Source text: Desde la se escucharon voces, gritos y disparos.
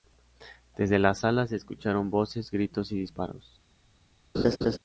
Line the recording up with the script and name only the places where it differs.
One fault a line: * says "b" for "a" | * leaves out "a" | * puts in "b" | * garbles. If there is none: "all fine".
* puts in "sala"